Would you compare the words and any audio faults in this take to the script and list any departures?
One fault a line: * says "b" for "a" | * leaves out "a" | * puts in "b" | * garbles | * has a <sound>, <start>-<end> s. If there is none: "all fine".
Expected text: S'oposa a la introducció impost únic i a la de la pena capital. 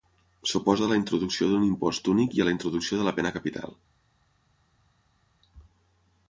* puts in "d'un"
* puts in "introducció"